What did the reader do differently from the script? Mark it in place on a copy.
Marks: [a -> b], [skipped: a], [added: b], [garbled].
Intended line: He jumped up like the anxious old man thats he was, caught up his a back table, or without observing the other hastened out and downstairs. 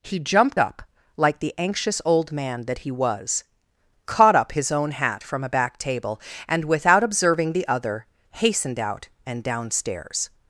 He jumped up like the anxious old man [thats -> that] he was, caught up his [added: own hat from] a back table, [or -> and] without observing the other hastened out and downstairs.